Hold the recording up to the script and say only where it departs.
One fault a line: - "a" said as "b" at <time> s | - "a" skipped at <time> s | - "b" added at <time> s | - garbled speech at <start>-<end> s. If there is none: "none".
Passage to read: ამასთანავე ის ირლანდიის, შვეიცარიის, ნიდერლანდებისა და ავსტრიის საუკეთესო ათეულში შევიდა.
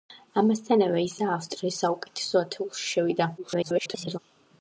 - "ირლანდიის შვეიცარიის ნიდერლანდებისა" skipped at 1.2 s
- garbled speech at 3.4-4.2 s